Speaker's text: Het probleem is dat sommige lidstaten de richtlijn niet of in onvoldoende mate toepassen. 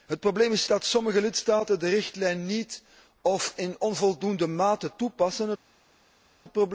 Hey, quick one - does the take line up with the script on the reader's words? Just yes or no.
yes